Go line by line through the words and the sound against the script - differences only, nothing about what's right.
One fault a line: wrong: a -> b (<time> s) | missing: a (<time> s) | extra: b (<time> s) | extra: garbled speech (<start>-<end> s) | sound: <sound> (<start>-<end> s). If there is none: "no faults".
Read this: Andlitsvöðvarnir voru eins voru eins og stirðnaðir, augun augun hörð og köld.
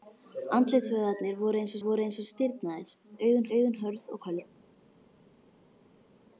no faults